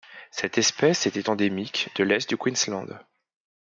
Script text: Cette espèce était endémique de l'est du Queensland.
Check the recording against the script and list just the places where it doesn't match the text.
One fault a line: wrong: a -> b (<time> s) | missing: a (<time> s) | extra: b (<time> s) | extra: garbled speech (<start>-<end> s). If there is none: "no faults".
no faults